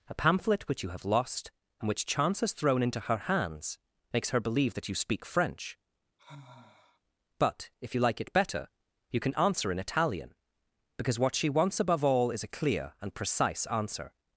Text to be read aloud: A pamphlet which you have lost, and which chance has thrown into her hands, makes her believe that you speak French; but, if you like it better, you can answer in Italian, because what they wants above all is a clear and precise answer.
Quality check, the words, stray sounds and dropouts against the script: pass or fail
fail